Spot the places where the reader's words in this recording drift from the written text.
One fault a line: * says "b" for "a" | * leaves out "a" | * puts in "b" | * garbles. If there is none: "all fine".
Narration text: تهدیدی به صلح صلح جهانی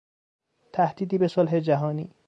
* leaves out "صلح"